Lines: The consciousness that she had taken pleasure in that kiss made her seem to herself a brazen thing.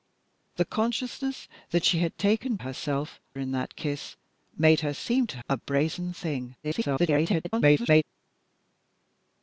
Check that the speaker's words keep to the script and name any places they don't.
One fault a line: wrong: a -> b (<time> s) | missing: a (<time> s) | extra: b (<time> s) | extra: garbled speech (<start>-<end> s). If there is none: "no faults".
wrong: pleasure -> herself (2.6 s)
missing: herself (5.4 s)
extra: garbled speech (6.6-8.0 s)